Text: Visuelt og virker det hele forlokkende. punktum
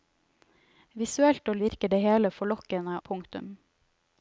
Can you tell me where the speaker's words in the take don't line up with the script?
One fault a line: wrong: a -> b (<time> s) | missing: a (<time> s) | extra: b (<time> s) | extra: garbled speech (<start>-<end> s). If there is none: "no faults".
no faults